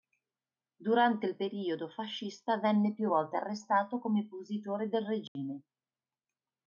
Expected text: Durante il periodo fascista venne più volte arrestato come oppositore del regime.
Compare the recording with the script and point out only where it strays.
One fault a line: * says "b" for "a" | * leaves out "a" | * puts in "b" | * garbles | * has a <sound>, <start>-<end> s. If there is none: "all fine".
* has a dropout, 5.3-5.4 s